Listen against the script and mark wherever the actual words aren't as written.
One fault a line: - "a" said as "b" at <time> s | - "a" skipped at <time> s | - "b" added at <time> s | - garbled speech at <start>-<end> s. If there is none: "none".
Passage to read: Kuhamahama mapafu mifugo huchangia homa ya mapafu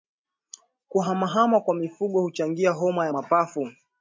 - "mapafu" said as "kwa" at 1.6 s